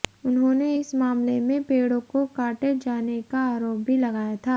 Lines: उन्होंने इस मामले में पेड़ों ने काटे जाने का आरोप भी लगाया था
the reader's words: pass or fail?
fail